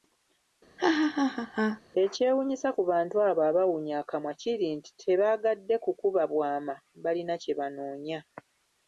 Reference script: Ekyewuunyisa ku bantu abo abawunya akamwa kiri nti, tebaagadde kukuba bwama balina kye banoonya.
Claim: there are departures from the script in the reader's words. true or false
false